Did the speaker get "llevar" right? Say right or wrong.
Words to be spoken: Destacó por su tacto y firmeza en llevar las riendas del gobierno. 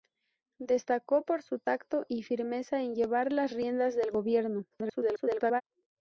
right